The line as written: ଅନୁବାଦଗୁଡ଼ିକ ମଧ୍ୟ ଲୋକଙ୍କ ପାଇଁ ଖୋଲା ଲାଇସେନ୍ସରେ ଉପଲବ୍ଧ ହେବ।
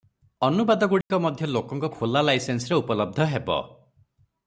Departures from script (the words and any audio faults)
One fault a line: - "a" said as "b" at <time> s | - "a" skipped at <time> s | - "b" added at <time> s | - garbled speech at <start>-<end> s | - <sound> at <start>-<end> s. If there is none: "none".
- dropout at 1.0-1.1 s
- "ପାଇଁ" skipped at 1.9 s